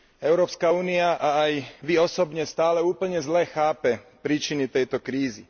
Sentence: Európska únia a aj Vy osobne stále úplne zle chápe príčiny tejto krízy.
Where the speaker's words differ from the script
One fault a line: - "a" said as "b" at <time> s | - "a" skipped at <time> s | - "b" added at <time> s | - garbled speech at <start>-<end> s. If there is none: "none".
none